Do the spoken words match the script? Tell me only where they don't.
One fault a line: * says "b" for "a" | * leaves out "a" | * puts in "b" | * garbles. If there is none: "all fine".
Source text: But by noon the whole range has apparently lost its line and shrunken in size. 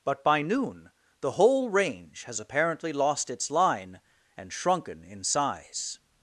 all fine